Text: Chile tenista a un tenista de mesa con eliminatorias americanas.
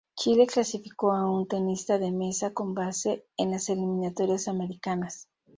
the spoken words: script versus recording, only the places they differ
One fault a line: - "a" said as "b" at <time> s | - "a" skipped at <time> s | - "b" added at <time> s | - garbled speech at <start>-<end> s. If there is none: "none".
- "tenista" said as "clasificó" at 0.5 s
- "base en las" added at 2.7 s